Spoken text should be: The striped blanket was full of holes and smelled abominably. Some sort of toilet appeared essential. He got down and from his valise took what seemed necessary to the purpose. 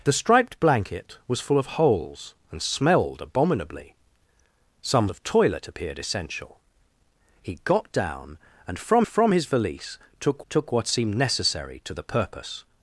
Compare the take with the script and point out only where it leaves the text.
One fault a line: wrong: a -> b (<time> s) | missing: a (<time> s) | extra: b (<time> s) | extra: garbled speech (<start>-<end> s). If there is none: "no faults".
missing: sort (5.1 s)
extra: from (9.0 s)
extra: took (10.5 s)